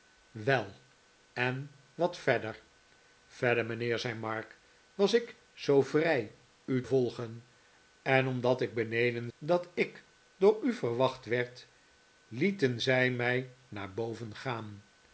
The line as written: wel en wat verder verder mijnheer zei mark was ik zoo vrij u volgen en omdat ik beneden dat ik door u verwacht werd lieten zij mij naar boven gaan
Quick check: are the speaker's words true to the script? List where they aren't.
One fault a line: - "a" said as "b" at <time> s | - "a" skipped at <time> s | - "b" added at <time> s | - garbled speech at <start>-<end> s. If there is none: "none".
none